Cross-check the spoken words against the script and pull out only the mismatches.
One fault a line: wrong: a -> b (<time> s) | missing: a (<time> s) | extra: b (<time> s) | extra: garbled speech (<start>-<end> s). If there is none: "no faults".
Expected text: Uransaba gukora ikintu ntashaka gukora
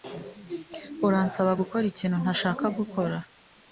no faults